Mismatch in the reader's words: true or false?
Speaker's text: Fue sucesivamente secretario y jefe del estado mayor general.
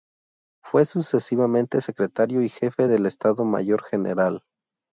false